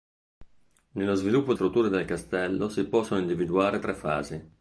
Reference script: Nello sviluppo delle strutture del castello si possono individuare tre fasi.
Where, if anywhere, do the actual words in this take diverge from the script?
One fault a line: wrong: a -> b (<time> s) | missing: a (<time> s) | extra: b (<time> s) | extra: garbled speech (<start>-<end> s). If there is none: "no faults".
missing: delle (1.5 s)